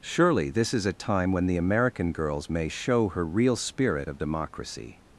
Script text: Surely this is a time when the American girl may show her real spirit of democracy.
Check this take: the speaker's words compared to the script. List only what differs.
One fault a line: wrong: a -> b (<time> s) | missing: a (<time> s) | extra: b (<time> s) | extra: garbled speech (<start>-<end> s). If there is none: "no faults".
wrong: girl -> girls (2.1 s)